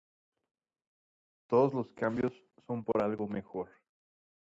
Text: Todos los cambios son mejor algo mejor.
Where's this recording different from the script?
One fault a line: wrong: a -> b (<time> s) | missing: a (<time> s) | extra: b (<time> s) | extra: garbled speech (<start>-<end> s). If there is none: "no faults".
wrong: mejor -> por (2.8 s)